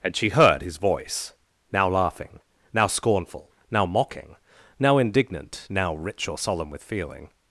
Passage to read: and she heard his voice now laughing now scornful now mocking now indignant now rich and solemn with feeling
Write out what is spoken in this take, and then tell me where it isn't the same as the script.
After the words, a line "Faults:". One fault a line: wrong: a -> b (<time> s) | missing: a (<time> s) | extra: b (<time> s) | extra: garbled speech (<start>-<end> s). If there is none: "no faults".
and she heard his voice now laughing now scornful now mocking now indignant now rich or solemn with feeling
Faults:
wrong: and -> or (6.3 s)